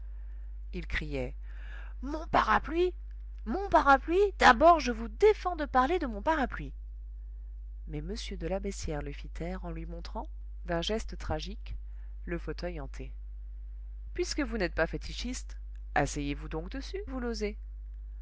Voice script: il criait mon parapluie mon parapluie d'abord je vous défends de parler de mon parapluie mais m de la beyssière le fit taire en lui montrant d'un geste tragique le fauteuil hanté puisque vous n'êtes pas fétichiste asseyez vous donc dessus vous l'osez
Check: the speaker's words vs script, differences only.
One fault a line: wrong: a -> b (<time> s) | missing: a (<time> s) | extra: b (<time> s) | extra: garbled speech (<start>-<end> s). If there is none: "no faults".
no faults